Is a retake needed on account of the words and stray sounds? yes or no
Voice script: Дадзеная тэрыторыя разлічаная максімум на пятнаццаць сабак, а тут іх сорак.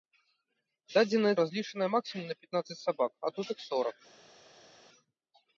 yes